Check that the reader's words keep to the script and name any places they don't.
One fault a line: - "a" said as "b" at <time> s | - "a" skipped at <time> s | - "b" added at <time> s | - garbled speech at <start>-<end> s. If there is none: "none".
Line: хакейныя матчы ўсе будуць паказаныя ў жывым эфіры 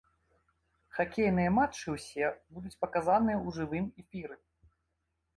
none